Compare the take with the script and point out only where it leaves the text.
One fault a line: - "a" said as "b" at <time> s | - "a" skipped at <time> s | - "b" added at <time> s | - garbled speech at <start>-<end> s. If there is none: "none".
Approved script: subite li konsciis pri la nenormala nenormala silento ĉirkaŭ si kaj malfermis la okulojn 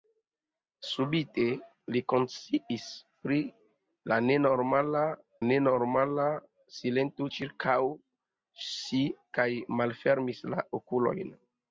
none